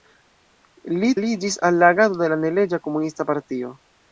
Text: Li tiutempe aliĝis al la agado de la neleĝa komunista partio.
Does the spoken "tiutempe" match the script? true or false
false